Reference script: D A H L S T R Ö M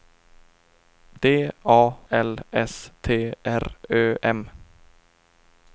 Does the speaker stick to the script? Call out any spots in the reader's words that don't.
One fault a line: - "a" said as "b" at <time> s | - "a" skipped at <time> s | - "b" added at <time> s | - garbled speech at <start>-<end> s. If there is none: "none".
- "H" skipped at 1.8 s